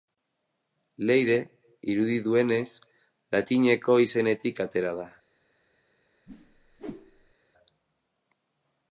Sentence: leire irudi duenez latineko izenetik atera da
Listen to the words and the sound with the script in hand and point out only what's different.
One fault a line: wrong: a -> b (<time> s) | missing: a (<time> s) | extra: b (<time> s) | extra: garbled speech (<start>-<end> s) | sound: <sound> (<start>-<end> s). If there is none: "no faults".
sound: whoosh (6.3-7.3 s)